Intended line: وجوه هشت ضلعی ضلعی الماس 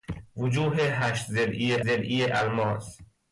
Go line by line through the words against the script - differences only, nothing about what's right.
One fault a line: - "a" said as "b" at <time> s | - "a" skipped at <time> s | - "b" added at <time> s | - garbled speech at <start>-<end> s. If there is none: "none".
none